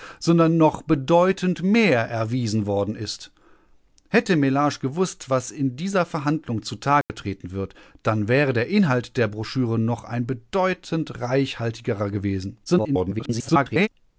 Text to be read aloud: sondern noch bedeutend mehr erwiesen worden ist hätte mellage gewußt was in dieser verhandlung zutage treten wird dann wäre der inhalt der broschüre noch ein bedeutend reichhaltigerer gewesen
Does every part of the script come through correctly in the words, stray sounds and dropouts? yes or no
no